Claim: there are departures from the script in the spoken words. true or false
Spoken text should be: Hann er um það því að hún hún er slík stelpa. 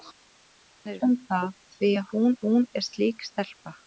false